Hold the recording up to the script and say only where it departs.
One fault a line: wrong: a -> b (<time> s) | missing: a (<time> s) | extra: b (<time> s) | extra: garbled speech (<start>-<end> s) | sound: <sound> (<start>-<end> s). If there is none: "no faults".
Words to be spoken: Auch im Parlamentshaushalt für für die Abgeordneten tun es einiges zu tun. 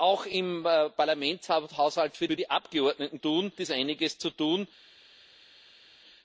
no faults